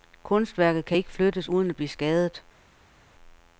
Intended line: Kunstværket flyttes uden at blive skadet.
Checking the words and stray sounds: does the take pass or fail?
fail